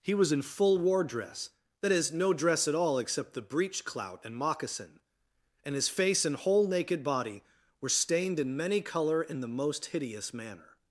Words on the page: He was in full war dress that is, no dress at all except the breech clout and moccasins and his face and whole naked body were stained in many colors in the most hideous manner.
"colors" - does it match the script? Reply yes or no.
no